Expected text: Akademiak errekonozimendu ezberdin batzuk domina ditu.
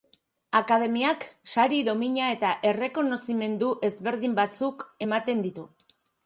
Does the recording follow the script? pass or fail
fail